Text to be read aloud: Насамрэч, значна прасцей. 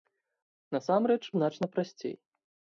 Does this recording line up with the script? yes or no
yes